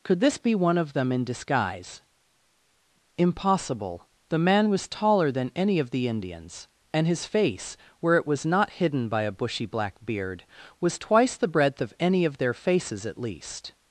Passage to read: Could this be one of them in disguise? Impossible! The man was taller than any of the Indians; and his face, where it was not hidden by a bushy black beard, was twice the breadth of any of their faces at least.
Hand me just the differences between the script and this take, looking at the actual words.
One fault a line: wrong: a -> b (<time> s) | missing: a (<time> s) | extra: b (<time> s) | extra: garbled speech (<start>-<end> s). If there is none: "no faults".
no faults